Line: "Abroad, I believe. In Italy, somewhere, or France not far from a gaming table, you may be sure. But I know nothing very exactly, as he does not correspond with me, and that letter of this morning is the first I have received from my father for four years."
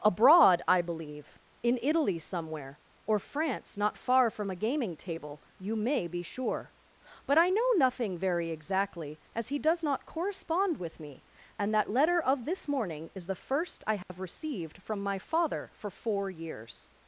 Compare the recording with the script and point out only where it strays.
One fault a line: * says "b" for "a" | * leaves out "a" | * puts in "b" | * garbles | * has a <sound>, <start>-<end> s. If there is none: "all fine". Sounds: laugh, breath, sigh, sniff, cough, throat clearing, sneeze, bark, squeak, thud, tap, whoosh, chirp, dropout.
* has a dropout, 14.0-14.1 s